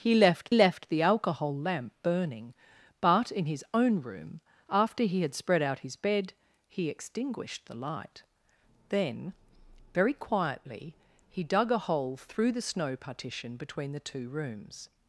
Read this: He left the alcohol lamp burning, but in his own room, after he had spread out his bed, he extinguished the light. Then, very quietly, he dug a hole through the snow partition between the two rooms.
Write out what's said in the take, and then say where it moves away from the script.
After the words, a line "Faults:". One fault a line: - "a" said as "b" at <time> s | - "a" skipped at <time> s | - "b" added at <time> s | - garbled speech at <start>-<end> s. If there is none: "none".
He left left the alcohol lamp burning, but in his own room, after he had spread out his bed, he extinguished the light. Then, very quietly, he dug a hole through the snow partition between the two rooms.
Faults:
- "left" added at 0.5 s